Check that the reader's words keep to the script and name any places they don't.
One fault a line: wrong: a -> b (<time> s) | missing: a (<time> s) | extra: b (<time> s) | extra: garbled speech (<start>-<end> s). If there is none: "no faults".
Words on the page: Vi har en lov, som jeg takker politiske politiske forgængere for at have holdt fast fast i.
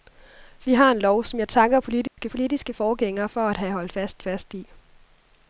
no faults